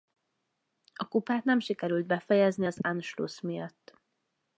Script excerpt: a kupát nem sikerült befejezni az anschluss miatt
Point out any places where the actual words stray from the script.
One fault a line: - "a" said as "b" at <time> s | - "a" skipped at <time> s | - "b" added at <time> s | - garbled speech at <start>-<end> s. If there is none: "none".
none